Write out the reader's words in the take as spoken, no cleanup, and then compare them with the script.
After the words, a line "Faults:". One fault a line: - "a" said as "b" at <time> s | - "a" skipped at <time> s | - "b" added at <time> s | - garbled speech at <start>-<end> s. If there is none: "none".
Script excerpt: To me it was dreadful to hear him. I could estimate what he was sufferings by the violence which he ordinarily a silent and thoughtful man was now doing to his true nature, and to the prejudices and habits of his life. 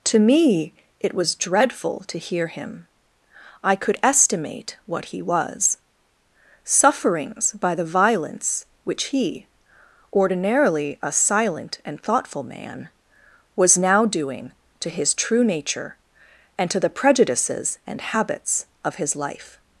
To me it was dreadful to hear him. I could estimate what he was sufferings by the violence which he ordinarily a silent and thoughtful man was now doing to his true nature, and to the prejudices and habits of his life.
Faults:
none